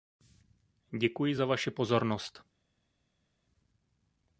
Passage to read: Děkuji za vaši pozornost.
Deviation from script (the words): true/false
false